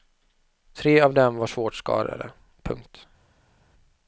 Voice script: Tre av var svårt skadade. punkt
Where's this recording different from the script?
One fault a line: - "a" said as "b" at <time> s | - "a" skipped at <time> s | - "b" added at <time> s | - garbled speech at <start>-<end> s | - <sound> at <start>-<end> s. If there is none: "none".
- "dem" added at 1.1 s